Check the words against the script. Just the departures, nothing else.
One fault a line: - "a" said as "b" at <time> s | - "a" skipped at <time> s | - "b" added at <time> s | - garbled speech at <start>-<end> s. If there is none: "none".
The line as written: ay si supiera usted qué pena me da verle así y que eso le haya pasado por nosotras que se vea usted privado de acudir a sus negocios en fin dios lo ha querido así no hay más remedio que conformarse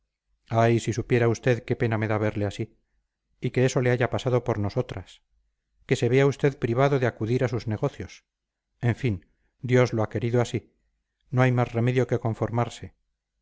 none